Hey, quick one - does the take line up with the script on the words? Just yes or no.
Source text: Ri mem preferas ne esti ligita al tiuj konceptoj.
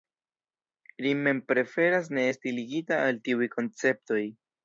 yes